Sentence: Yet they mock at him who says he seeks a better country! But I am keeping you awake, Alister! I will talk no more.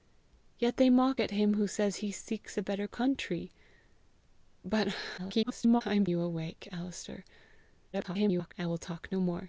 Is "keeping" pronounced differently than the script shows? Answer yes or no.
yes